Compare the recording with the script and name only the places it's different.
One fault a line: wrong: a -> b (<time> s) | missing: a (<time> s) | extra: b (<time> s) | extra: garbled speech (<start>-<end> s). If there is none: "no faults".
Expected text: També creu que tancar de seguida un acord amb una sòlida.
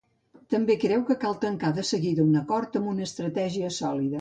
extra: cal (1.2 s)
extra: estratègia (3.1 s)